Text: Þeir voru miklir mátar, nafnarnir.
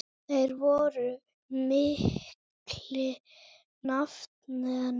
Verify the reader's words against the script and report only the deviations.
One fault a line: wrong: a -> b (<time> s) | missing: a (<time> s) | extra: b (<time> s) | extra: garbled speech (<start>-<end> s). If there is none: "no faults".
missing: mátar (3.2 s)